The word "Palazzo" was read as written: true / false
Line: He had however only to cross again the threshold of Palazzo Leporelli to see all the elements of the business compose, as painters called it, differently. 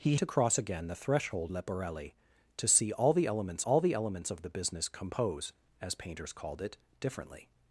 false